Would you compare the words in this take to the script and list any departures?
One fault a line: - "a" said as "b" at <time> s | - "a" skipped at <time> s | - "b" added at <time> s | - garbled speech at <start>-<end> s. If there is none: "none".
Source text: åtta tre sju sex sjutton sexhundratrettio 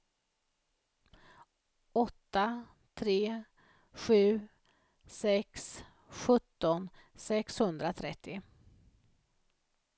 none